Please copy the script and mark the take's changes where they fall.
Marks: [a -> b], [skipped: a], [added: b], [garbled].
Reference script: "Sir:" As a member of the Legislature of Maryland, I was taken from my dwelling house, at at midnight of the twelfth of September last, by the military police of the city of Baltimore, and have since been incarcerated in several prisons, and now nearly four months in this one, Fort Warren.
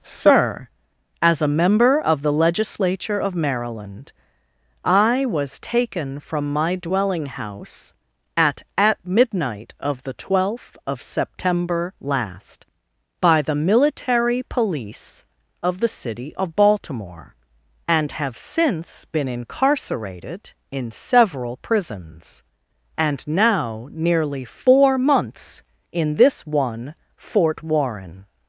"Sir:" As a member of the Legislature of Maryland, I was taken from my dwelling house, at at midnight of the twelfth of September last, by the military police of the city of Baltimore, and have since been incarcerated in several prisons, and now nearly four months in this one, Fort Warren.